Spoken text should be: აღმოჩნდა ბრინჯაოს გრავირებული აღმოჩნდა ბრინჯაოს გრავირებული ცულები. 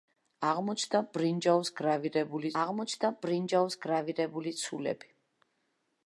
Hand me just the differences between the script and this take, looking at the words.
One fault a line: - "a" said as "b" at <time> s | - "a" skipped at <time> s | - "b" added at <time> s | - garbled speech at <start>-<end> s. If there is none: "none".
none